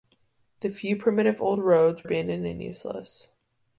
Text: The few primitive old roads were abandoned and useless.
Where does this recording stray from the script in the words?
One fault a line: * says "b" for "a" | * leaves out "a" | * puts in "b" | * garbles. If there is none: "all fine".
* leaves out "were"